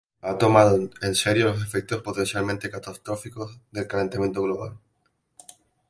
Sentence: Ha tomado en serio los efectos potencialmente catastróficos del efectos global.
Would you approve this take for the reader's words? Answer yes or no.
no